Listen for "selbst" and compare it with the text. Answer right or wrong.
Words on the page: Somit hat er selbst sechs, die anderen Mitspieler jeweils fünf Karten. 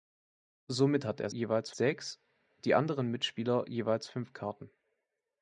wrong